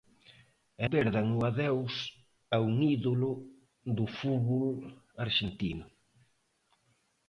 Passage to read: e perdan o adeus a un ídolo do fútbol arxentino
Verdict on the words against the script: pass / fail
pass